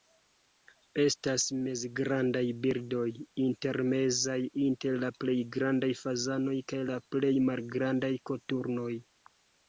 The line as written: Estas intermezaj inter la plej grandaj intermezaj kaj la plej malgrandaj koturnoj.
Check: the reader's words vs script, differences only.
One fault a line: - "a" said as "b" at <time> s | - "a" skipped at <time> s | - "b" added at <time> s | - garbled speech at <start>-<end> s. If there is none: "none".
- "mezgrandaj birdoj" added at 1.6 s
- "intermezaj" said as "fazanoj" at 6.0 s